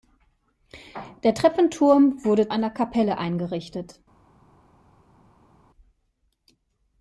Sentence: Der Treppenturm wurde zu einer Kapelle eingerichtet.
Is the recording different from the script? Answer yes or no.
yes